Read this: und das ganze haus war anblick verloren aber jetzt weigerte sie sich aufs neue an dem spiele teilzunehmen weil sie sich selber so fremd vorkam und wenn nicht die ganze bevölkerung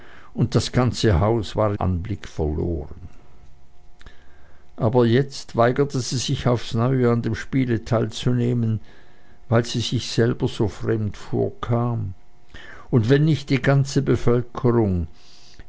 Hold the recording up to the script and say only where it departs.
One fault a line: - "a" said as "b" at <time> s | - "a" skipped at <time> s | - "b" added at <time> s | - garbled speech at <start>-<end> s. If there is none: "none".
none